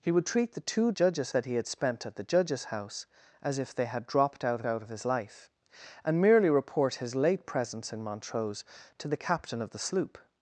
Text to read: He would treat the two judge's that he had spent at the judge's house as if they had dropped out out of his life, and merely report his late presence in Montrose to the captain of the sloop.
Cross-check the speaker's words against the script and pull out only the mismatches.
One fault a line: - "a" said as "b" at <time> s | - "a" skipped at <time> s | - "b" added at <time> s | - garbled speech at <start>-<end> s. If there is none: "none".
none